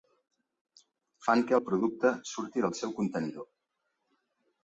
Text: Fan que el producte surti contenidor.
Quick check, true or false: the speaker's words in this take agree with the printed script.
false